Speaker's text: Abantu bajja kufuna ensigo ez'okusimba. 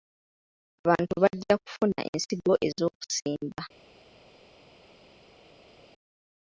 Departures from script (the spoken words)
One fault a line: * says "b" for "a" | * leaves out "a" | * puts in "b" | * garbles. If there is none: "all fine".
all fine